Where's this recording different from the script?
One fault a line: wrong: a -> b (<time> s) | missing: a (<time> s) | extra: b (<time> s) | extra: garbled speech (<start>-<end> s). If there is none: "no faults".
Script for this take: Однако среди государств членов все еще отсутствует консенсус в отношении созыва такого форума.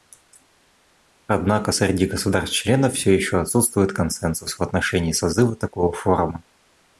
no faults